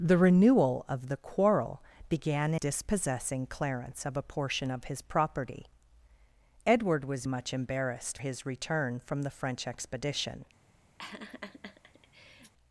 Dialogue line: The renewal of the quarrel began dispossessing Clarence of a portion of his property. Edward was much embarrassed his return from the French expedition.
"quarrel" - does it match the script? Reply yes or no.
yes